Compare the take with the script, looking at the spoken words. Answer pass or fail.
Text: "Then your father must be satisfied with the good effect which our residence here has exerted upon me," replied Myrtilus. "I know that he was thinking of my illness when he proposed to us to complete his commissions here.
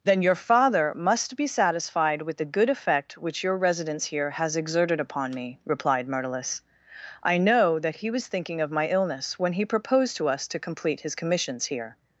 fail